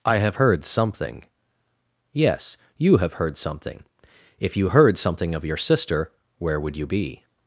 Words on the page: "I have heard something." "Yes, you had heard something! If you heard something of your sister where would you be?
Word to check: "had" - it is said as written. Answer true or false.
false